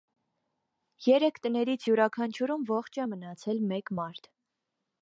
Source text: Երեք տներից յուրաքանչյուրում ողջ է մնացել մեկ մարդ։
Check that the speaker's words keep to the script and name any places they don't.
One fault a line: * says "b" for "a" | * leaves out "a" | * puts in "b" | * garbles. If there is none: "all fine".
all fine